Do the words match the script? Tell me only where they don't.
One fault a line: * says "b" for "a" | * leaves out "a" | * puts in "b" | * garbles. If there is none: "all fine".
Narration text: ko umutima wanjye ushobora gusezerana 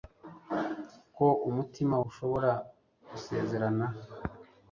* leaves out "wanjye"